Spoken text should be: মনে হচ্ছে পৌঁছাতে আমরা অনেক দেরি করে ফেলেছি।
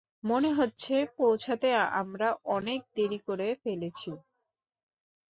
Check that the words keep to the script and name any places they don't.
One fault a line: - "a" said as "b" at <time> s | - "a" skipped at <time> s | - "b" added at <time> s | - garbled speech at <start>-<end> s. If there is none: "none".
none